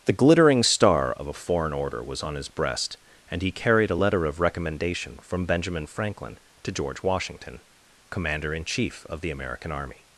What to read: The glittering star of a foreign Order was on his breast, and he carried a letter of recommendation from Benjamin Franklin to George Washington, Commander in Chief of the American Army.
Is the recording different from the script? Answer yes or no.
no